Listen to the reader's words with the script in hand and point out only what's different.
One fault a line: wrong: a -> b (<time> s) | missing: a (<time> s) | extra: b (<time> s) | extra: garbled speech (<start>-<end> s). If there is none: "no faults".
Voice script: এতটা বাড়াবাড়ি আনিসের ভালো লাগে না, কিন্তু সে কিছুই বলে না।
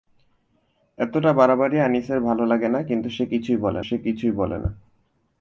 extra: সে কিছুই বলে (3.8 s)